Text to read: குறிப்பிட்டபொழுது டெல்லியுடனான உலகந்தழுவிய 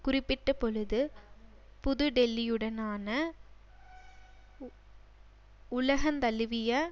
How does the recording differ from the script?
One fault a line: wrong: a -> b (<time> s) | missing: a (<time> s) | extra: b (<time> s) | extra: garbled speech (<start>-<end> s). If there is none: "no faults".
extra: புது (1.8 s)